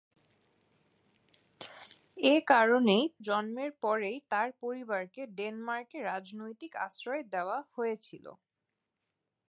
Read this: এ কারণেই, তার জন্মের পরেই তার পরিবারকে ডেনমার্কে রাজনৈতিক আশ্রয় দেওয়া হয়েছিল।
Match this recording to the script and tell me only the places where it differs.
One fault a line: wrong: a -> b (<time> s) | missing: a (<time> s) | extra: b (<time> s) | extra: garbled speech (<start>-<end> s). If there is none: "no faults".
missing: তার (3.0 s)